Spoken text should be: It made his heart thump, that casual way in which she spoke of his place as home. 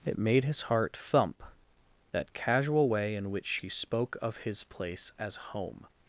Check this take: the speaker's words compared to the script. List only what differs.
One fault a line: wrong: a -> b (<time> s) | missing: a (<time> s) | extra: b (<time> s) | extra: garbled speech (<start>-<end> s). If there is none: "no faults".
no faults